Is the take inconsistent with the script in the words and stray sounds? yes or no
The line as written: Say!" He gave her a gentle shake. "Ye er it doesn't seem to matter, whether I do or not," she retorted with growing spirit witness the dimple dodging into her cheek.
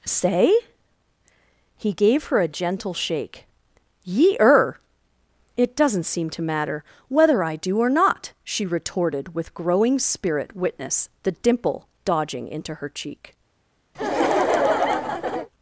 yes